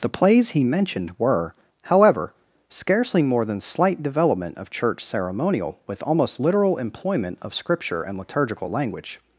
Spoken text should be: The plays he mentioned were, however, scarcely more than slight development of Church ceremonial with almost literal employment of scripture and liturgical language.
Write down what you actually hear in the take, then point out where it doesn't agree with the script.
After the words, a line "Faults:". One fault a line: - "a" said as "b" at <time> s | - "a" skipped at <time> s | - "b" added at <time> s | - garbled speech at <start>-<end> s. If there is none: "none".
The plays he mentioned were, however, scarcely more than slight development of Church ceremonial with almost literal employment of scripture and liturgical language.
Faults:
none